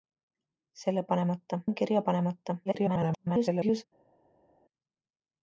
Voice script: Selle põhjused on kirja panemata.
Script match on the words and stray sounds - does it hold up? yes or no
no